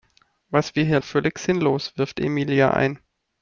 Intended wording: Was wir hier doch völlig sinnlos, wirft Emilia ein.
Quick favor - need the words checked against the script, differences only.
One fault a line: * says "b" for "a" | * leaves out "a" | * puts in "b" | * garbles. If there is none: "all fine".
all fine